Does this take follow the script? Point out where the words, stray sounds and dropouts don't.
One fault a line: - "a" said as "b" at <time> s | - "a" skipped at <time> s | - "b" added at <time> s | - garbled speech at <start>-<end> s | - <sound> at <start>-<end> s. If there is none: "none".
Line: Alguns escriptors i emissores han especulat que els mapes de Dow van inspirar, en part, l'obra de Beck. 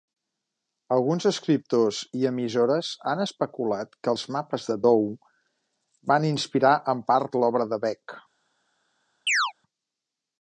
- chirp at 9.3-9.5 s